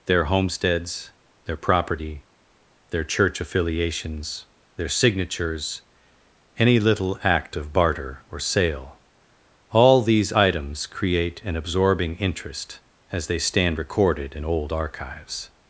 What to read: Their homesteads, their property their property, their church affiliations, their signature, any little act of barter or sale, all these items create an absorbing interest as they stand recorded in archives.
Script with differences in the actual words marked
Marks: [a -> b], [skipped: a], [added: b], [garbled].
Their homesteads, their property their [skipped: property, their] church affiliations, their [signature, -> signatures] any little act of barter or sale, all these items create an absorbing interest as they stand recorded in [added: old] archives.